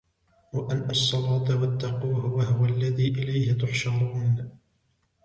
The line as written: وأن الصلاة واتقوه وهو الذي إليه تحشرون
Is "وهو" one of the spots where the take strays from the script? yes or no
no